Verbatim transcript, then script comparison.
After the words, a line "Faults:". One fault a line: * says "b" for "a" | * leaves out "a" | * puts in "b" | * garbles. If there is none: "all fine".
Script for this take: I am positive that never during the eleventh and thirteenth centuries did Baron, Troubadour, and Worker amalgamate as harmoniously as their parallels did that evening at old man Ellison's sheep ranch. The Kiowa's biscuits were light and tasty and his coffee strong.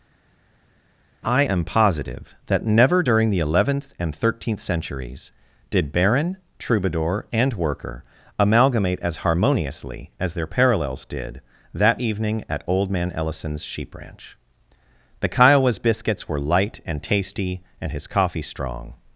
I am positive that never during the eleventh and thirteenth centuries did Baron, Troubadour, and Worker amalgamate as harmoniously as their parallels did that evening at old man Ellison's sheep ranch. The Kiowa's biscuits were light and tasty and his coffee strong.
Faults:
all fine